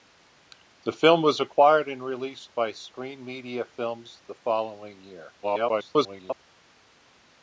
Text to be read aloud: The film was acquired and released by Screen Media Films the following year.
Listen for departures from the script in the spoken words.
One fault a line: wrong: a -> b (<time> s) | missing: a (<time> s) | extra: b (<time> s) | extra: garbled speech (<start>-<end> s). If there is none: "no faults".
extra: garbled speech (5.4-6.4 s)